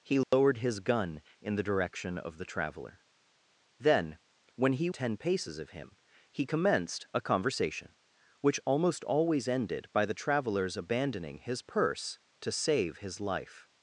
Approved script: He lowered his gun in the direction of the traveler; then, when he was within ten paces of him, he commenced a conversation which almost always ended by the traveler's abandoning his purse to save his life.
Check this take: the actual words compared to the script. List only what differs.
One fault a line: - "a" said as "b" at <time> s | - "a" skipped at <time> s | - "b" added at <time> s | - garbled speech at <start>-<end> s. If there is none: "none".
- "was within" skipped at 4.9 s